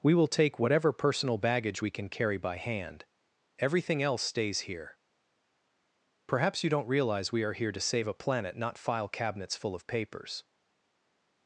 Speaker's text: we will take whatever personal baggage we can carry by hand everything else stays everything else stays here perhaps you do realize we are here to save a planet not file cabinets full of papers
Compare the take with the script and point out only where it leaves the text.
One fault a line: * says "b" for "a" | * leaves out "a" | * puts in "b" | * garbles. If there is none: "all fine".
* leaves out "everything else stays"
* says "don't" for "do"